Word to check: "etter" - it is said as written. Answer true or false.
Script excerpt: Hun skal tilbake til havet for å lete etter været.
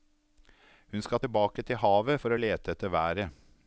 true